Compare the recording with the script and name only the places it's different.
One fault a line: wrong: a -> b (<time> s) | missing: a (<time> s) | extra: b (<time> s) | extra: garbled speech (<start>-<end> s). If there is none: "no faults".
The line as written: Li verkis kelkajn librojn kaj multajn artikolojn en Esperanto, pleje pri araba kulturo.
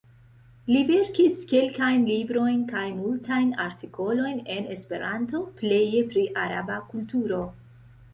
no faults